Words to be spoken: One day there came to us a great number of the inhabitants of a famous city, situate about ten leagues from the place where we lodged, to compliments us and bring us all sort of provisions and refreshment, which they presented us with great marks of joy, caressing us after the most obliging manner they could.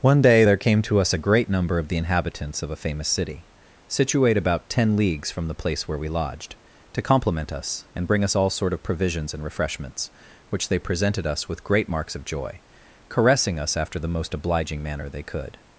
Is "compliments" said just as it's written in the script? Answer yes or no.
no